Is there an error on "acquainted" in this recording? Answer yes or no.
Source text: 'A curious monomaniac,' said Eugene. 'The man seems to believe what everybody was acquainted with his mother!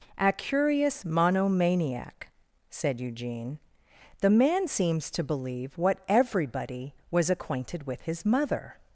no